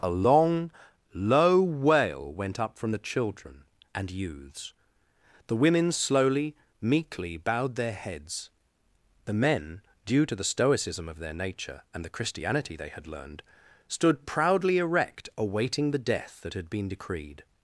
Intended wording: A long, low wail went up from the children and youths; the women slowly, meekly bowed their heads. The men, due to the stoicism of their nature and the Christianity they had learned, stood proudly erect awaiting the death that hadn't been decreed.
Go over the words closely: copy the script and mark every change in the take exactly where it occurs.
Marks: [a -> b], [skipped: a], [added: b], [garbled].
A long, low wail went up from the children and youths; the women slowly, meekly bowed their heads. The men, due to the stoicism of their nature and the Christianity they had learned, stood proudly erect awaiting the death that [hadn't -> had] been decreed.